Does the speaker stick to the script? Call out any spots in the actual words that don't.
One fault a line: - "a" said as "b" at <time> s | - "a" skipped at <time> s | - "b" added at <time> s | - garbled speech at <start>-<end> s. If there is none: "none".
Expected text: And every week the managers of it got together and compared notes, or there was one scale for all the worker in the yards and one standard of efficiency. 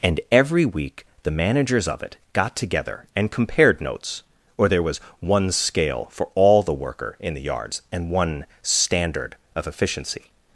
none